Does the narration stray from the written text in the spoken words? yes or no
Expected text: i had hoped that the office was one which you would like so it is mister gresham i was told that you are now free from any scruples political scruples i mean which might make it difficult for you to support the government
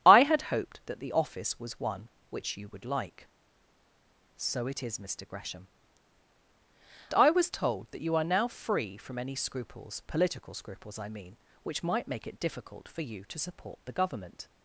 no